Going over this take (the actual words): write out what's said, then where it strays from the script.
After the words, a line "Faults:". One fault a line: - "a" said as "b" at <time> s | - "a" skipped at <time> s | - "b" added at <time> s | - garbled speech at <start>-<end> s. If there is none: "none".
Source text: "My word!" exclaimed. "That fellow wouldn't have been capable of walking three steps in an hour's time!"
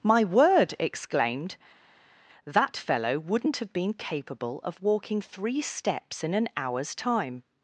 "My word!" exclaimed. "That fellow wouldn't have been capable of walking three steps in an hour's time!"
Faults:
none